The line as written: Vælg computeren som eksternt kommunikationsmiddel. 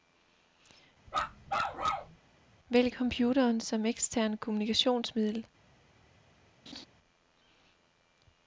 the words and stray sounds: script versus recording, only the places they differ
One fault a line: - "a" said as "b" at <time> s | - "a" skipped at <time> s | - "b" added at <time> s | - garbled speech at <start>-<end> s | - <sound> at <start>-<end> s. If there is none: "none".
- bark at 1.1-2.2 s
- laugh at 6.7-6.9 s